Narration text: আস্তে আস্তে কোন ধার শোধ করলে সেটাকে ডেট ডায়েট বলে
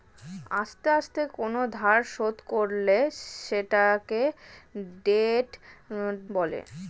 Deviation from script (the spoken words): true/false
true